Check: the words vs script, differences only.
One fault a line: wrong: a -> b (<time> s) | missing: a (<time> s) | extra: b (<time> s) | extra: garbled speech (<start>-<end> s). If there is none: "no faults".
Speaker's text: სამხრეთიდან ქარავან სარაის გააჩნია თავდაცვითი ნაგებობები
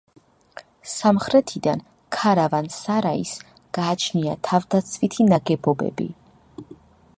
no faults